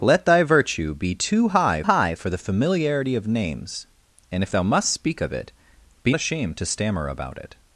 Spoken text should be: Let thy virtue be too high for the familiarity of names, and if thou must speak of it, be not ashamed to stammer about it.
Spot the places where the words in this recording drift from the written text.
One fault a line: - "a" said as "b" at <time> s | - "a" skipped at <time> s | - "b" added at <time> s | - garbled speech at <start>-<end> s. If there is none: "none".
- "high" added at 1.8 s
- "not" skipped at 6.1 s